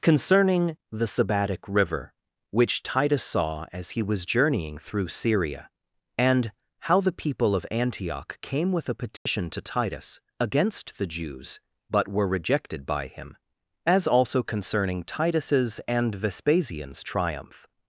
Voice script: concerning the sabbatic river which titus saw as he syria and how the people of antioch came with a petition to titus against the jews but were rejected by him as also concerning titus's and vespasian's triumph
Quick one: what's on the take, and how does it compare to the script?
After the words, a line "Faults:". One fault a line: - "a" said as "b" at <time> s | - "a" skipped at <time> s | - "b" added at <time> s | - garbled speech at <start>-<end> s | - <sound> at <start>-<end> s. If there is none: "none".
concerning the sabbatic river which titus saw as he was journeying through syria and how the people of antioch came with a petition to titus against the jews but were rejected by him as also concerning titus's and vespasian's triumph
Faults:
- "was journeying through" added at 4.0 s
- dropout at 9.2-9.3 s